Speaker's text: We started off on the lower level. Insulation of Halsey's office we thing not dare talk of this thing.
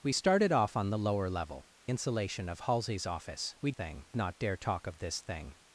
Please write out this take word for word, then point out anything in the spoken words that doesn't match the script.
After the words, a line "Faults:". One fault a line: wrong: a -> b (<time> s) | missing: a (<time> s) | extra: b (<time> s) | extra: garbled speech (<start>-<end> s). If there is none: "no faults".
We started off on the lower level. Insulation of Halsey's office we thing not dare talk of this thing.
Faults:
no faults